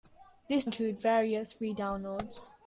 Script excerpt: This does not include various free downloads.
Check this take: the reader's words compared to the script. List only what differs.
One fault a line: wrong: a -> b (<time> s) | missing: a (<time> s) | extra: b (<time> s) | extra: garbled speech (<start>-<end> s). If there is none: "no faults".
missing: does not (0.7 s)